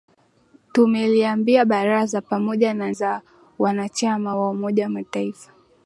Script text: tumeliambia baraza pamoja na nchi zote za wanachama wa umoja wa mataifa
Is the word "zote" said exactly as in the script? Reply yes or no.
no